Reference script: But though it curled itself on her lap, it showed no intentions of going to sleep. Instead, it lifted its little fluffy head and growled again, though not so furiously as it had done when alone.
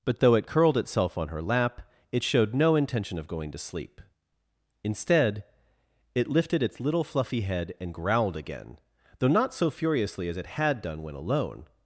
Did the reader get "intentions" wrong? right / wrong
wrong